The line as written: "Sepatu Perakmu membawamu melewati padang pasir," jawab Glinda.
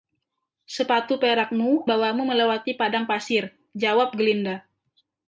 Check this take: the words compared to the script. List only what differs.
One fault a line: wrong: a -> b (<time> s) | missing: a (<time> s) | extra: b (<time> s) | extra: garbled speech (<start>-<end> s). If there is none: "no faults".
no faults